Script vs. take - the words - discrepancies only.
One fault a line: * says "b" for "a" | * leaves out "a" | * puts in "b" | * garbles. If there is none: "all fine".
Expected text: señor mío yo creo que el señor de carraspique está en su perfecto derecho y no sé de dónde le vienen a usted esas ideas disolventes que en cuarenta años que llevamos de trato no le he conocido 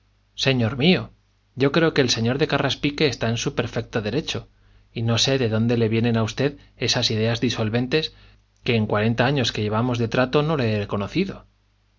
all fine